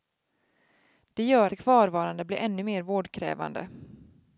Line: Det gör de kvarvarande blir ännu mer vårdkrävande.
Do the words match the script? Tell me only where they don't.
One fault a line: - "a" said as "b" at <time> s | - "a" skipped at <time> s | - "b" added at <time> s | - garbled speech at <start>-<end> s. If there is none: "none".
none